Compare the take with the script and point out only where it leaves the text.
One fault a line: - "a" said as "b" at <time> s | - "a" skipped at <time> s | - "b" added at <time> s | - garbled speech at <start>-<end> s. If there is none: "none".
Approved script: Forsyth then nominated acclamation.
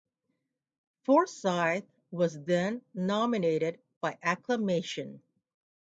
- "was" added at 2.1 s
- "by" added at 4.0 s